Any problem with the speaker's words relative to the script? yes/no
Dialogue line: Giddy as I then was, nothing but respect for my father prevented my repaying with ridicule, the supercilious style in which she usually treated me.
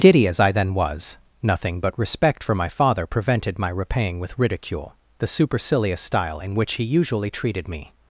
yes